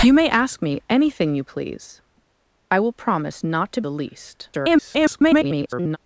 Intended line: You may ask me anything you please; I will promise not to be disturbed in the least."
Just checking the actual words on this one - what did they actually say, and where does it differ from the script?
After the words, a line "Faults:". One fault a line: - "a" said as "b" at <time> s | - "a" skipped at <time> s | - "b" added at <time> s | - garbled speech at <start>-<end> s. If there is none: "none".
You may ask me anything you please; I will promise not to the least." [garbled]
Faults:
- "be disturbed in" skipped at 3.8 s
- garbled speech at 4.5-6.0 s